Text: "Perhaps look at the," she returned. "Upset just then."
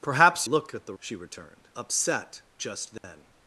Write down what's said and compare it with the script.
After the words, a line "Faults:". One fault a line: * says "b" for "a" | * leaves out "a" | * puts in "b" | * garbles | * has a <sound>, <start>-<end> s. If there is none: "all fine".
"Perhaps look at the," she returned. "Upset just then."
Faults:
* has a dropout, 3.0-3.0 s